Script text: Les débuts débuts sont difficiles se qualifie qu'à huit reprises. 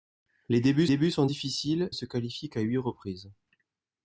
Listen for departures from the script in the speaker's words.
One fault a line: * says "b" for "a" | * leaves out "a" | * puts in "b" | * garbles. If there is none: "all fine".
all fine